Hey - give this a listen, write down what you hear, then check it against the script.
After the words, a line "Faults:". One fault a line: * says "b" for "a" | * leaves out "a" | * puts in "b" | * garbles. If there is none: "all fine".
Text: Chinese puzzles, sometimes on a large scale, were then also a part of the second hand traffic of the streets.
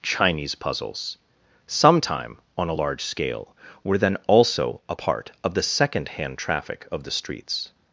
Chinese puzzles, sometime on a large scale, were then also a part of the second hand traffic of the streets.
Faults:
* says "sometime" for "sometimes"